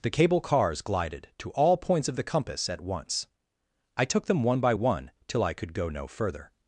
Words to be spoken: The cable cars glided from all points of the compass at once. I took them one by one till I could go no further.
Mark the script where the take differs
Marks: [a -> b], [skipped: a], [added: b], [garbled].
The cable cars glided [from -> to] all points of the compass at once. I took them one by one till I could go no further.